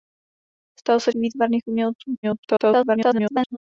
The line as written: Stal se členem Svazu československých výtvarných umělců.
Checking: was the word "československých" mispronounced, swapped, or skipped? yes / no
yes